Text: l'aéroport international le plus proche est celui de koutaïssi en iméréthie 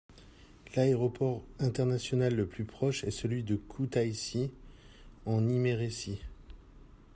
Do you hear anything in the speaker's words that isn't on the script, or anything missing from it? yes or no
no